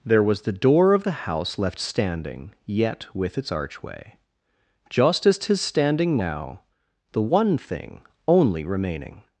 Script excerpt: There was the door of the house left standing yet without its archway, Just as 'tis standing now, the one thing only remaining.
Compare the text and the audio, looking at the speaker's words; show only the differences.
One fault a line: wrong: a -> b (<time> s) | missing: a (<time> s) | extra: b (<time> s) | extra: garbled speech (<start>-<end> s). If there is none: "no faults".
wrong: without -> with (3.1 s)